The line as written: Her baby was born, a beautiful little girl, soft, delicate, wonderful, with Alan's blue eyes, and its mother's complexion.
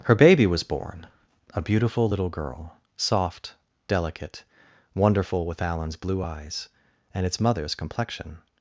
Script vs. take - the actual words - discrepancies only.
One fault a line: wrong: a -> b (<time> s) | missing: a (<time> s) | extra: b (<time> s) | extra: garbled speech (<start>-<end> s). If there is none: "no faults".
no faults